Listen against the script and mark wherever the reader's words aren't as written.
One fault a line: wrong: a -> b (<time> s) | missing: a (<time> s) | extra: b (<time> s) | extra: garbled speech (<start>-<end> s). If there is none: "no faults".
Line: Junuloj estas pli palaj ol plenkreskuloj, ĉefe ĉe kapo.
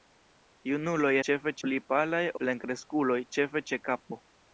wrong: estas -> ĉefe (1.3 s)
missing: ol (2.2 s)